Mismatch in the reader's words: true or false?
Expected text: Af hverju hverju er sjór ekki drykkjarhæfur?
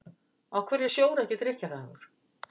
true